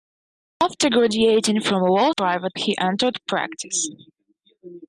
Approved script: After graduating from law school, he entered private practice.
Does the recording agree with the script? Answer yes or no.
no